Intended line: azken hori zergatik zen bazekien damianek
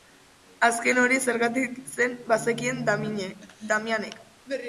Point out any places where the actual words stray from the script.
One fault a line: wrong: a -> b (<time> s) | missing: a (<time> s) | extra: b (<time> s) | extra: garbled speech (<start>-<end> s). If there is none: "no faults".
no faults